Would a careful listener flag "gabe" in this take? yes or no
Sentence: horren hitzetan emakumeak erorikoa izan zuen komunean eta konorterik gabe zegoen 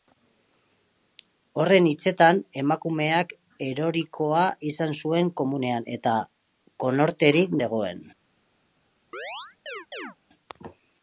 yes